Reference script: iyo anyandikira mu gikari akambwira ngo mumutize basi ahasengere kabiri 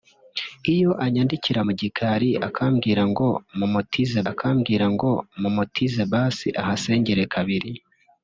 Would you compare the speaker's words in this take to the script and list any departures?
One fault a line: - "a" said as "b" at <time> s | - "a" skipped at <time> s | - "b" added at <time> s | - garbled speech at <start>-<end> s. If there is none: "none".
- "akambwira ngo mumutize" added at 4.3 s